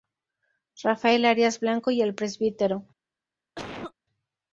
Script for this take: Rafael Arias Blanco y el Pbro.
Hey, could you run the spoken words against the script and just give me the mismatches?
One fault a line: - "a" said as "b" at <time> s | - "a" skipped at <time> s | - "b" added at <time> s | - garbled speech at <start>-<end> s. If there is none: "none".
none